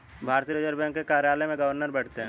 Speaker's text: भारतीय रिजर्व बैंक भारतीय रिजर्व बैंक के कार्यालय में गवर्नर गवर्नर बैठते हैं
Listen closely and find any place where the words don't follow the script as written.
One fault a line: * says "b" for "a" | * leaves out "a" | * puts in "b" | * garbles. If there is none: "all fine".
* leaves out "भारतीय रिजर्व बैंक"
* leaves out "गवर्नर"